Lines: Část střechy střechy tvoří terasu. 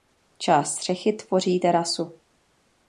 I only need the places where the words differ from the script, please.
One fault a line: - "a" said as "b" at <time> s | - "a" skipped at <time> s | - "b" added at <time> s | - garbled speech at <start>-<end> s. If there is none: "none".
- "střechy" skipped at 1.1 s